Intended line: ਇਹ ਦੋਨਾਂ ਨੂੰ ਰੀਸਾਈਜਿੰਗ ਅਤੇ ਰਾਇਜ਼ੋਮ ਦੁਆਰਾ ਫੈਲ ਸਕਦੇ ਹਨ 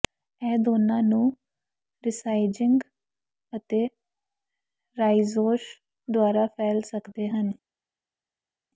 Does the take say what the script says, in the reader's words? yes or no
yes